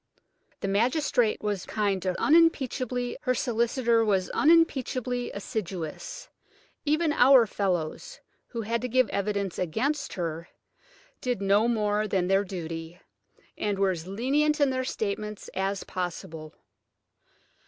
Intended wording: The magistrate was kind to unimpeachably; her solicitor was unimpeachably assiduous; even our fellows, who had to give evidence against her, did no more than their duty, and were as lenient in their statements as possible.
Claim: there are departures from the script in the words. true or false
false